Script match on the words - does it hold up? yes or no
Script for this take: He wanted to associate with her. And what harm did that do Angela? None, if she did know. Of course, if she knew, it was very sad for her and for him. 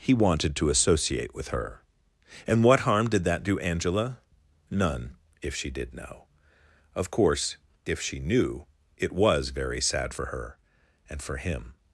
yes